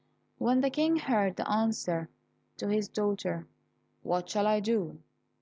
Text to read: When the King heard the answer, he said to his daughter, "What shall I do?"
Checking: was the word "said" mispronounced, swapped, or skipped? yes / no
yes